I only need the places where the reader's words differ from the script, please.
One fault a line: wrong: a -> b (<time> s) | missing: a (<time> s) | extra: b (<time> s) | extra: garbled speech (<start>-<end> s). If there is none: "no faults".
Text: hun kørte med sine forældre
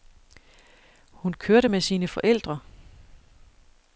no faults